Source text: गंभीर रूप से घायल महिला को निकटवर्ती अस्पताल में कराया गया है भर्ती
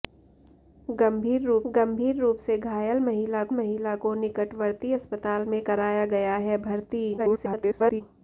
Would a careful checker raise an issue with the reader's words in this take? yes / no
yes